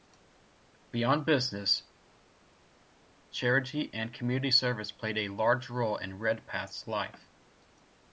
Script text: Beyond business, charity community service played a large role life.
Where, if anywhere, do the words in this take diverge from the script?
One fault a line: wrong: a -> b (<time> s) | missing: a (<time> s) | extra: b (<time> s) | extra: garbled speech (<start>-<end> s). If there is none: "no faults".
extra: and (3.9 s)
extra: in Redpath's (6.0 s)